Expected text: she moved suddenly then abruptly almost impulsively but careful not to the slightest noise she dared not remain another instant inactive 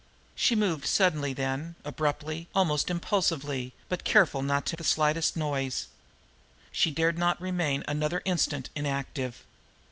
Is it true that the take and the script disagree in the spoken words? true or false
false